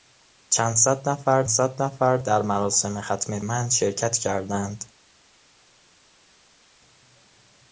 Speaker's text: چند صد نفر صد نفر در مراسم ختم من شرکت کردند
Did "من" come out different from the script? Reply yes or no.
no